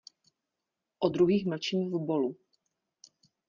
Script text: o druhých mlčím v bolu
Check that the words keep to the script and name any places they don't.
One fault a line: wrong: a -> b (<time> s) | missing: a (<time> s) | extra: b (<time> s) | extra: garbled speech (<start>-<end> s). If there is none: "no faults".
no faults